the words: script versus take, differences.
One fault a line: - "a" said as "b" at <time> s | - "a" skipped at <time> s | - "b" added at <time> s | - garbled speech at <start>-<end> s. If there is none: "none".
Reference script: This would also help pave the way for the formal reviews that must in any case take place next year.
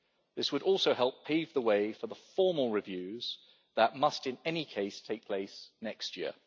none